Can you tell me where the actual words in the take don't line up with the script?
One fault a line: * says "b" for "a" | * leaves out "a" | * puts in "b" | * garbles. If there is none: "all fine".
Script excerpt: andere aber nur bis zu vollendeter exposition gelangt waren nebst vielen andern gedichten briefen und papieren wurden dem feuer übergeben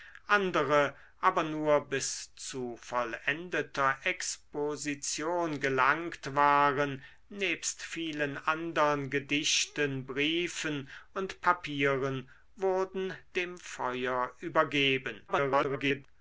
* garbles